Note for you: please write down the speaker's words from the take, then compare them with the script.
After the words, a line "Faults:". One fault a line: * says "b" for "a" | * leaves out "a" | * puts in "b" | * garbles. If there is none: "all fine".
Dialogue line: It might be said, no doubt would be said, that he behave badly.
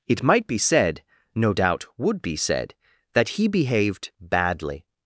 It might be said, no doubt would be said, that he behaved badly.
Faults:
* says "behaved" for "behave"